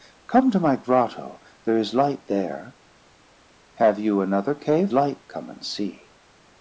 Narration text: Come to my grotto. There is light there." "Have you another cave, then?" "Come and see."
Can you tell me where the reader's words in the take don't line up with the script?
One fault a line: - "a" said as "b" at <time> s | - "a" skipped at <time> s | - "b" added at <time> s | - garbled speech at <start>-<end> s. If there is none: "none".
- "then" said as "light" at 4.9 s